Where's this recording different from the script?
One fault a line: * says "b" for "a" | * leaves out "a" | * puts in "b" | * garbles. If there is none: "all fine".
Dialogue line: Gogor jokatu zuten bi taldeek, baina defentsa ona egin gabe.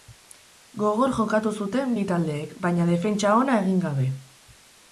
all fine